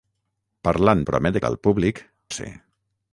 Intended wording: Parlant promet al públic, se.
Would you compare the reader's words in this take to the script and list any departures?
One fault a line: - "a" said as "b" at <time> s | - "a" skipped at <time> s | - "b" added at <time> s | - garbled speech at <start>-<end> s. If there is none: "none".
none